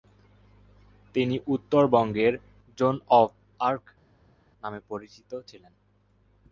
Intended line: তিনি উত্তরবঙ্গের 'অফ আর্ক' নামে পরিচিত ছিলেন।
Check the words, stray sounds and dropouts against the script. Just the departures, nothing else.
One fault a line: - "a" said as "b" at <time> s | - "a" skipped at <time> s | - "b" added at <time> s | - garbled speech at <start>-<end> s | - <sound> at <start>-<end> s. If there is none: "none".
- "জোন" added at 2.8 s